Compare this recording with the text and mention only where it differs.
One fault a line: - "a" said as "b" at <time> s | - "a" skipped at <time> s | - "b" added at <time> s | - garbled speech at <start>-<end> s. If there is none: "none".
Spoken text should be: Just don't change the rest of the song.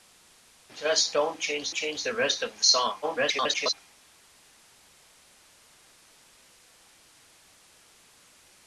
- "change" added at 1.7 s
- garbled speech at 3.0-3.7 s